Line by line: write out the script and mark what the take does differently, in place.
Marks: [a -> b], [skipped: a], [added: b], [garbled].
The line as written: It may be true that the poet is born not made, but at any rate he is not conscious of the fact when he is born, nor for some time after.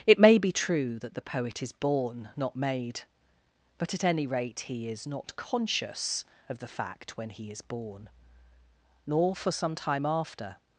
It may be true that the poet is born not made, but at any rate he is not conscious of the fact when he is born, nor for some time after.